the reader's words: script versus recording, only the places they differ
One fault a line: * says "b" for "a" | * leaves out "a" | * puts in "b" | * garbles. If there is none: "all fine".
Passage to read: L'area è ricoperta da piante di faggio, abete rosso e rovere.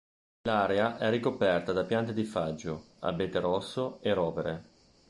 all fine